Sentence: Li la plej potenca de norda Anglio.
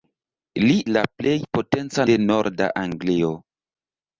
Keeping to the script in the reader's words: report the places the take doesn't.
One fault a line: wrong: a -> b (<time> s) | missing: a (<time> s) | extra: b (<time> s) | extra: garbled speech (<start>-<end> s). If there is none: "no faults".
no faults